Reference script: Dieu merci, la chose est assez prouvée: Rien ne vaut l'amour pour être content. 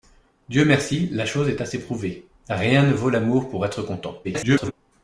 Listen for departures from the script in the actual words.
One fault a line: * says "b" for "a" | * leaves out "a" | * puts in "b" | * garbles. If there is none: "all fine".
* garbles